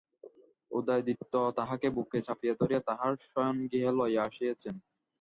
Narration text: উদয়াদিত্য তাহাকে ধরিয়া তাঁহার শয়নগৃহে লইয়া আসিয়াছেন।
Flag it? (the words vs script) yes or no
yes